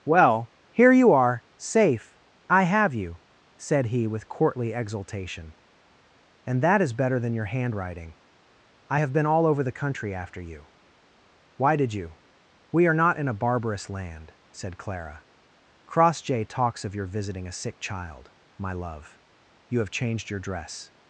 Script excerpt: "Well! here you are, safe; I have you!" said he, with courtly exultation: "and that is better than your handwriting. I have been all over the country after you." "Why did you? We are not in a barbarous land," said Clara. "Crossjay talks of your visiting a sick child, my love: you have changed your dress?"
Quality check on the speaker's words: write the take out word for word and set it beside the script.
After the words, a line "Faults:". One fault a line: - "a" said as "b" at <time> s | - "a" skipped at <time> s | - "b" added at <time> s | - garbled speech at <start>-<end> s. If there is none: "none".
"Well! here you are, safe; I have you!" said he, with courtly exultation: "and that is better than your handwriting. I have been all over the country after you." "Why did you? We are not in a barbarous land," said Clara. "Crossjay talks of your visiting a sick child, my love: you have changed your dress?"
Faults:
none